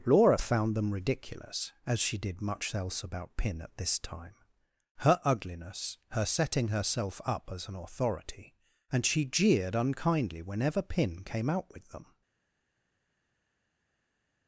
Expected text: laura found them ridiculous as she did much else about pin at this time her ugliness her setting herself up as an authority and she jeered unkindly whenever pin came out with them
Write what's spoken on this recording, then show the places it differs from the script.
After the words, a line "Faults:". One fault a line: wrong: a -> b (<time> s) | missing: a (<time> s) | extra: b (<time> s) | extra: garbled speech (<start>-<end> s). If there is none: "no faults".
laura found them ridiculous as she did much else about pin at this time her ugliness her setting herself up as an authority and she jeered unkindly whenever pin came out with them
Faults:
no faults